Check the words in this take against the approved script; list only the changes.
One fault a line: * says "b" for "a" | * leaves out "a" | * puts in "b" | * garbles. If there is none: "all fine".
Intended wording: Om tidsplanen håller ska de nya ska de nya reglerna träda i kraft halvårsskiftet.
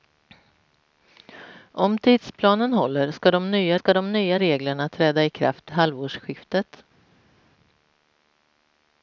all fine